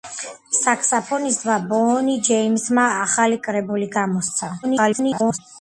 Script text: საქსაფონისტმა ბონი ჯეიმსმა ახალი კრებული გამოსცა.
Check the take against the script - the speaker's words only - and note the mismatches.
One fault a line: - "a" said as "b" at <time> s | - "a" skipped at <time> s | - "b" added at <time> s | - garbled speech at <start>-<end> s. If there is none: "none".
- garbled speech at 4.6-5.4 s